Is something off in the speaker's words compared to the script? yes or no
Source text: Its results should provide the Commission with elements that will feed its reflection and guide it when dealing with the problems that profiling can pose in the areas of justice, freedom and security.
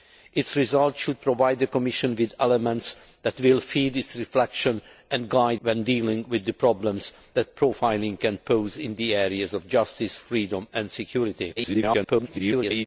yes